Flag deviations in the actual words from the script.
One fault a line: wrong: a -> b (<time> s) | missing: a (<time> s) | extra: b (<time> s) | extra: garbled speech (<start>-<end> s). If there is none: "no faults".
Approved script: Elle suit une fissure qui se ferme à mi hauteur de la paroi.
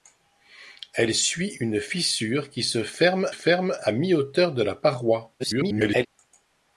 extra: ferme (3.3 s)
extra: garbled speech (5.4-6.1 s)